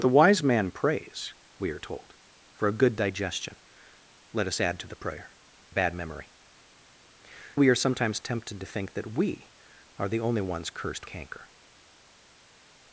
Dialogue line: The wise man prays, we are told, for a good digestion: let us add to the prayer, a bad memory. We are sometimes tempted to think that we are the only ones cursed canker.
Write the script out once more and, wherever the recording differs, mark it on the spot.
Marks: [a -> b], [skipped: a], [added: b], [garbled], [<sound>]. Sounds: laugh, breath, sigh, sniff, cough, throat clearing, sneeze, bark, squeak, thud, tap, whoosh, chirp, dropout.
The wise man prays, we are told, for a good digestion: let us add to the prayer, a bad memory. We are sometimes tempted to think that we are the only ones cursed canker.